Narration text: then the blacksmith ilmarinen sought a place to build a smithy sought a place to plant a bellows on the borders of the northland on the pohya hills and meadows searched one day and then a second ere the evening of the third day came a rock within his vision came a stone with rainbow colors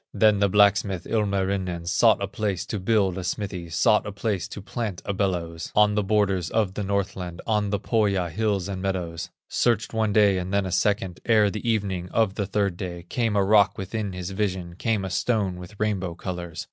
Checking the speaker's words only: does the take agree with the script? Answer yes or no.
yes